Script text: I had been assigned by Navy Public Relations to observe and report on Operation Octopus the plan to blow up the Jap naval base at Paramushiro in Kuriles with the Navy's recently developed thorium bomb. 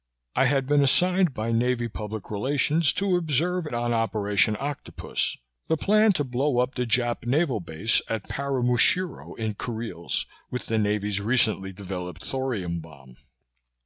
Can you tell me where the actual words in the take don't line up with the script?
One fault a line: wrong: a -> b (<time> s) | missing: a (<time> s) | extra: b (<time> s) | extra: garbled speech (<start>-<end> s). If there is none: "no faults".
missing: and report (3.7 s)